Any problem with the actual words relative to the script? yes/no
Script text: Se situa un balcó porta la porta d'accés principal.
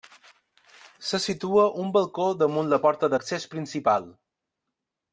yes